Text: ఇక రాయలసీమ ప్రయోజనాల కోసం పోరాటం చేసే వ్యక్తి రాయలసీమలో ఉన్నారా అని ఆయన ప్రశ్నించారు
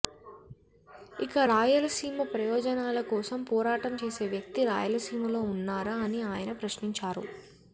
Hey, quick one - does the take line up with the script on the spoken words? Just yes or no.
yes